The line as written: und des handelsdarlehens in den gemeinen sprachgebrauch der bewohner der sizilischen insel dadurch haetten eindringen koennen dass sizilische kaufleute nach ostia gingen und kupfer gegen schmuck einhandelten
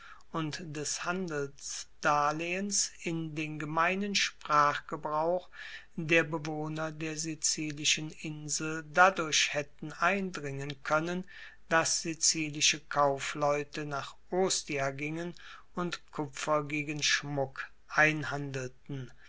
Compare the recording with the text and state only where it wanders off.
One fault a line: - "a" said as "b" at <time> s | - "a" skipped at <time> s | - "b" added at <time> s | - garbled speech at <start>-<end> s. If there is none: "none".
none